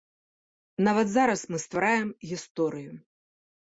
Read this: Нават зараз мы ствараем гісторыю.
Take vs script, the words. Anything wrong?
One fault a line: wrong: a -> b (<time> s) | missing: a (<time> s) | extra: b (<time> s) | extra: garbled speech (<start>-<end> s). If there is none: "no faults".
no faults